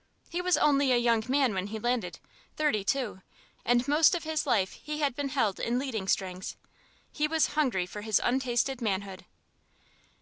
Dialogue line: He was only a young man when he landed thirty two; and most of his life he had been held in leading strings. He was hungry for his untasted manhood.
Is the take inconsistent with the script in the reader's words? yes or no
no